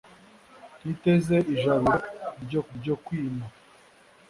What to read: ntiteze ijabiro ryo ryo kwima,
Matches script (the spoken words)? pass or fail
pass